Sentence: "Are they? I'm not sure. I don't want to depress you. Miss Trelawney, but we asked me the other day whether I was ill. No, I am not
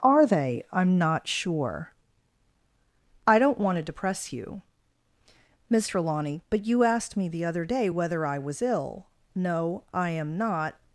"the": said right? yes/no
yes